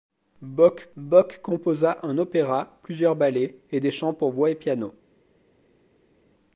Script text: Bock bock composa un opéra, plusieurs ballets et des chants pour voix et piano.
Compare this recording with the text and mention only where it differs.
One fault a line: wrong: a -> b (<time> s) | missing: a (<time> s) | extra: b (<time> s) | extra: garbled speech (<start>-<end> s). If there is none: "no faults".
no faults